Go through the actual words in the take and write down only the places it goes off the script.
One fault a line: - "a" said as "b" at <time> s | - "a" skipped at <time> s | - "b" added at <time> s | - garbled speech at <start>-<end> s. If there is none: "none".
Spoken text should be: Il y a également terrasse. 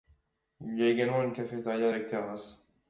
- "une cafétéria avec" added at 1.2 s